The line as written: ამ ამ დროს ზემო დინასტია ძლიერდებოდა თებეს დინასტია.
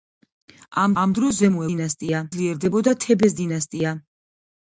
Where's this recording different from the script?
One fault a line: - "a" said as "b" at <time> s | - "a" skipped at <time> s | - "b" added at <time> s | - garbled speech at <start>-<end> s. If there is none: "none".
none